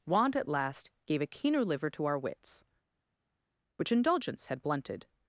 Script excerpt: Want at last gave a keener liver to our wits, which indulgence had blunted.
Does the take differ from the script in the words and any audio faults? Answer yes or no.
no